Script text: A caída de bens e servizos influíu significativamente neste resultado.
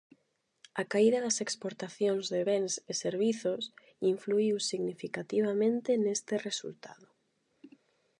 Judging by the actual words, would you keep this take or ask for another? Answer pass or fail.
fail